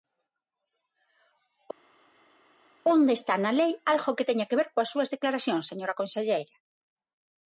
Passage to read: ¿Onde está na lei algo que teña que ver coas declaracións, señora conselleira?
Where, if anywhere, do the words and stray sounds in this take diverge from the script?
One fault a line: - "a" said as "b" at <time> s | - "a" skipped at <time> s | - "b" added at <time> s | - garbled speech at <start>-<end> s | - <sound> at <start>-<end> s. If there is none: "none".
- "súas" added at 4.9 s